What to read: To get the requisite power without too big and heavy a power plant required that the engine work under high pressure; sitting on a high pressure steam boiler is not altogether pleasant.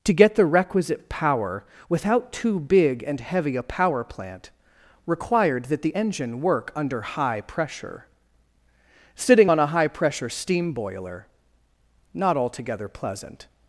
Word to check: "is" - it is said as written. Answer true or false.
false